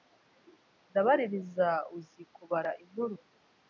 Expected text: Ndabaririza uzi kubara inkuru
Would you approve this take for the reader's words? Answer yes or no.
yes